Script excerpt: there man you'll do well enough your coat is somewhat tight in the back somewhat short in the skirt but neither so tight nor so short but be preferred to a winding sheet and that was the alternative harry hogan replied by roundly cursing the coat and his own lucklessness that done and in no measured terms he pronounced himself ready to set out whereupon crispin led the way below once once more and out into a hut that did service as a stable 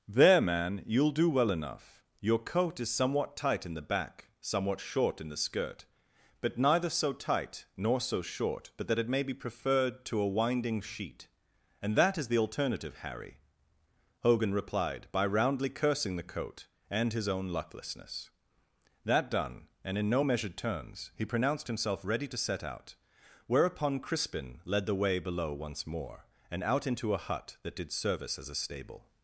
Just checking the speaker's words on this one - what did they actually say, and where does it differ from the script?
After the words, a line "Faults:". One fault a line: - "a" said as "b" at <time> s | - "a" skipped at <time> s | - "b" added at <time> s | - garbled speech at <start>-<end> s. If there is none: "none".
there man you'll do well enough your coat is somewhat tight in the back somewhat short in the skirt but neither so tight nor so short but that it may be preferred to a winding sheet and that is the alternative harry hogan replied by roundly cursing the coat and his own lucklessness that done and in no measured terms he pronounced himself ready to set out whereupon crispin led the way below once more and out into a hut that did service as a stable
Faults:
- "that it may" added at 8.9 s
- "was" said as "is" at 12.2 s
- "once" skipped at 25.9 s